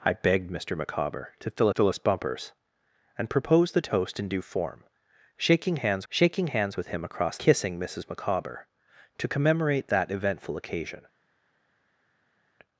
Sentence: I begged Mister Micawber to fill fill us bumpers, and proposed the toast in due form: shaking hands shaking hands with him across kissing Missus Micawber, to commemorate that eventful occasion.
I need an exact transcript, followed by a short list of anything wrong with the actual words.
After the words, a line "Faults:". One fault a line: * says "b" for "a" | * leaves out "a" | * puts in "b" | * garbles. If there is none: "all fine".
I begged Mister Micawber to fill fill us bumpers, and proposed the toast in due form: shaking hands shaking hands with him across kissing Missus Micawber, to commemorate that eventful occasion.
Faults:
all fine